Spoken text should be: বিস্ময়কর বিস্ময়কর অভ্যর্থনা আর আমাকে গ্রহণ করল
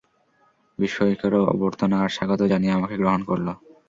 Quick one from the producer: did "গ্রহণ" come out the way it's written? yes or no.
yes